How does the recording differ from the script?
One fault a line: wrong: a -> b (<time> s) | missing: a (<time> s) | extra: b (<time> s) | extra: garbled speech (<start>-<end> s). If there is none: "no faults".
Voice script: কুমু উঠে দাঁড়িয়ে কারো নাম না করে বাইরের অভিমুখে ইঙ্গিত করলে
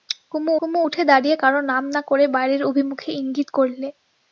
extra: কুমু (0.6 s)